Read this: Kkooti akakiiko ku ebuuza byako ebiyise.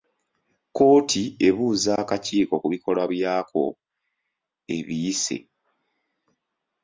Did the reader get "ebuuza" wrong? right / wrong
wrong